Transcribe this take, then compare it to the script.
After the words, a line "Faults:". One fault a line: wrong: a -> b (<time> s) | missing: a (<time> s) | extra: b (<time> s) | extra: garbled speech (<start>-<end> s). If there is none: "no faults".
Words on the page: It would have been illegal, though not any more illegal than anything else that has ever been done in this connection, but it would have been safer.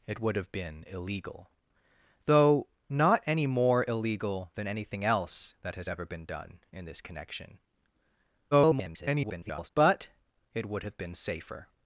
It would have been illegal, though not any more illegal than anything else that has ever been done in this connection, [garbled] but it would have been safer.
Faults:
extra: garbled speech (8.5-9.7 s)